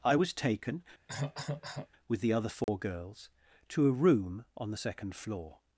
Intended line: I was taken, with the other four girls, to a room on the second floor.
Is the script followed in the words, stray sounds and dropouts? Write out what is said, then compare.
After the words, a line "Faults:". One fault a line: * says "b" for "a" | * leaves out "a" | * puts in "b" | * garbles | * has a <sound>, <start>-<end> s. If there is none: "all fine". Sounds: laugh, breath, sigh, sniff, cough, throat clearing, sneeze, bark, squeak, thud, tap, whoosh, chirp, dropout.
I was taken, with the other four girls, to a room on the second floor.
Faults:
* has a cough, 1.1-1.9 s
* has a dropout, 2.6-2.7 s